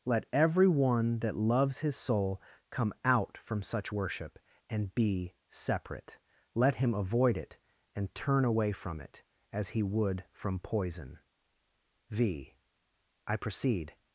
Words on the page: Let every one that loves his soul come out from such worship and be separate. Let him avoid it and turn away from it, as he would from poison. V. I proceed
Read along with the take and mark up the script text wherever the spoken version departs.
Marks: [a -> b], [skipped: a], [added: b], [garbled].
Let every one that loves his soul come out from such worship and be separate. Let him avoid it and turn away from it, as he would from poison. V. I proceed